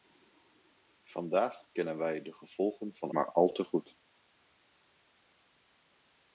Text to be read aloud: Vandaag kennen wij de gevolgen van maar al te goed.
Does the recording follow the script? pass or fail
pass